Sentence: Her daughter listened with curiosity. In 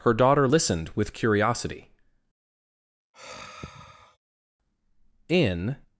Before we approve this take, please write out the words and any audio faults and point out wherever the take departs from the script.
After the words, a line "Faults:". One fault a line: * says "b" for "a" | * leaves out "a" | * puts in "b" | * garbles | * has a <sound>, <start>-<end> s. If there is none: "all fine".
Her daughter listened with curiosity. In
Faults:
* has a sigh, 3.1-4.2 s